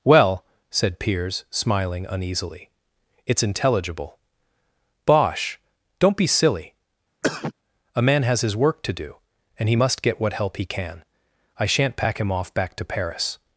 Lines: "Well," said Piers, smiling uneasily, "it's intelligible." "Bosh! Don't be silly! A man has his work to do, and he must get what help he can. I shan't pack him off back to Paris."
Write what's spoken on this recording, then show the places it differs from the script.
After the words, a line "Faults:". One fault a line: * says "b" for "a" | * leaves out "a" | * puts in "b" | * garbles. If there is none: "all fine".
"Well," said Piers, smiling uneasily, "it's intelligible." "Bosh! Don't be silly! A man has his work to do, and he must get what help he can. I shan't pack him off back to Paris."
Faults:
all fine